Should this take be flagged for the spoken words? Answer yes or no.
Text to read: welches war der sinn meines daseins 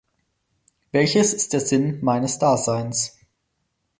yes